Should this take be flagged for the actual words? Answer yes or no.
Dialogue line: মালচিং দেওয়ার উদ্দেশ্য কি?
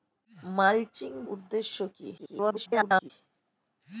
yes